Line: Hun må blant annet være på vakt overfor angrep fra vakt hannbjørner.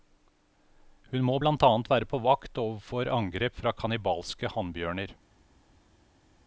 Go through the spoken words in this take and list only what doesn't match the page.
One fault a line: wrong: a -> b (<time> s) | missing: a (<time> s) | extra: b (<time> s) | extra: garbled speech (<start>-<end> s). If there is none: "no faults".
wrong: vakt -> kannibalske (3.7 s)